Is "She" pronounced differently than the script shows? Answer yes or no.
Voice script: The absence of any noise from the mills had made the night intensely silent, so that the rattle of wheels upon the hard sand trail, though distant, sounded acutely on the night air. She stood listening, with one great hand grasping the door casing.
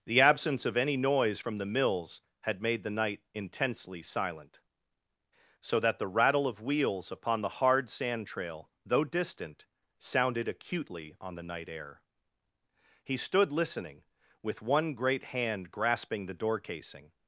yes